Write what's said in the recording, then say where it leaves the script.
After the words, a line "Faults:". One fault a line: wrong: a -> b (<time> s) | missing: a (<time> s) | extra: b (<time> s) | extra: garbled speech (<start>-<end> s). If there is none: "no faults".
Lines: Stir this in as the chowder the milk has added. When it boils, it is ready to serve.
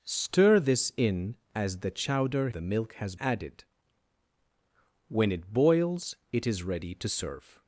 Stir this in as the chowder the milk has added. When it boils, it is ready to serve.
Faults:
no faults